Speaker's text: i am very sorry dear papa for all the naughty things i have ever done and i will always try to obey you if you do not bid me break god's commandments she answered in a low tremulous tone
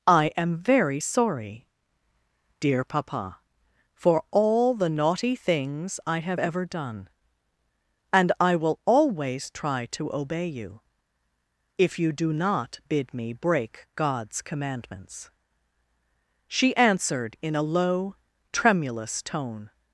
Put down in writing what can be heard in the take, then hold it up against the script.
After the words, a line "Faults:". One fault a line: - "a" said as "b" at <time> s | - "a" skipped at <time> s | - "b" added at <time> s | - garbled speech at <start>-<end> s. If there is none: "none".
i am very sorry dear papa for all the naughty things i have ever done and i will always try to obey you if you do not bid me break god's commandments she answered in a low tremulous tone
Faults:
none